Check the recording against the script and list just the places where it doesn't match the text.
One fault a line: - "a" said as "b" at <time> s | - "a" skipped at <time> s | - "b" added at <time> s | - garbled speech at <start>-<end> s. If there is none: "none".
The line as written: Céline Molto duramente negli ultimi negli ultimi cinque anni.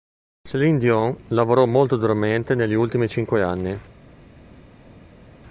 - "Dion lavorò" added at 0.8 s
- "negli ultimi" skipped at 3.1 s